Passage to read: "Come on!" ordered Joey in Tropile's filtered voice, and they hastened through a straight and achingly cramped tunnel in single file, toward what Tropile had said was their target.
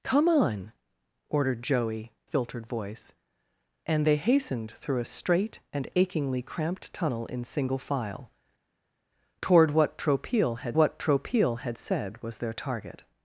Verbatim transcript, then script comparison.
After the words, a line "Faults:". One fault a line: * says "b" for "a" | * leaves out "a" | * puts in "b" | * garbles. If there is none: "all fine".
"Come on!" ordered Joey filtered voice, and they hastened through a straight and achingly cramped tunnel in single file, toward what Tropile had what Tropile had said was their target.
Faults:
* leaves out "in Tropile's"
* puts in "what Tropile had"